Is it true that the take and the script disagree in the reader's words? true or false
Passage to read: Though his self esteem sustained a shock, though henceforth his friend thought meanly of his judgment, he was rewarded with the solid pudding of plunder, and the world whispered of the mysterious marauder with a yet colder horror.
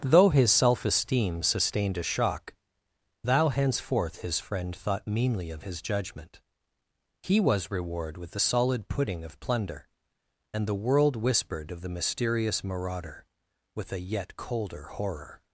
true